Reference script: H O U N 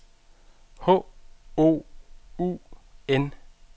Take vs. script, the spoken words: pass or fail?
pass